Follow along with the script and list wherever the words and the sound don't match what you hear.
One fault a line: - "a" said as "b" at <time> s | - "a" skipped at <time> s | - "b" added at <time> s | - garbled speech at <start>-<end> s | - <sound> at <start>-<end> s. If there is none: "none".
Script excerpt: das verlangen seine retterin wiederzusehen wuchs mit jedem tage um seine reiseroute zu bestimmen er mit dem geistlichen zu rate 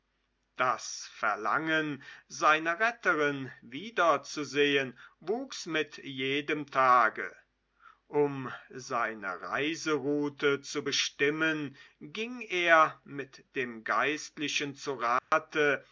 - "ging" added at 12.0 s
- dropout at 15.2-15.3 s